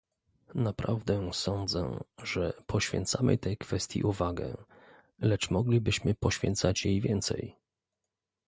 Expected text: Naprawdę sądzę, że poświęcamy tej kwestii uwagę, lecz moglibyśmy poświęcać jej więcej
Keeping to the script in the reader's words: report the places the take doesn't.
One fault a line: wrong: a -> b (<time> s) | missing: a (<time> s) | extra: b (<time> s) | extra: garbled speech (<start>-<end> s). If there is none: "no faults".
no faults